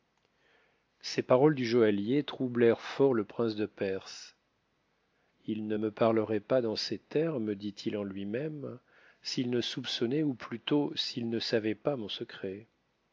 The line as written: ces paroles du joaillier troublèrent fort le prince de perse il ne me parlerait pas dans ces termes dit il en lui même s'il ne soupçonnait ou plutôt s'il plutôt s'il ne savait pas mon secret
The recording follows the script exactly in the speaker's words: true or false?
false